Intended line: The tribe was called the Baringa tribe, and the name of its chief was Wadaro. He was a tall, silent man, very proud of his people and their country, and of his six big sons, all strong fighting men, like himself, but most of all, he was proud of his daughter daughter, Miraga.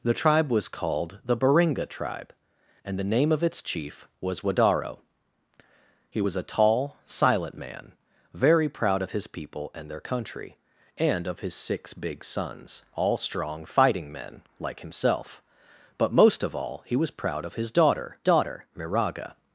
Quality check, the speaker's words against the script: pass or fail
pass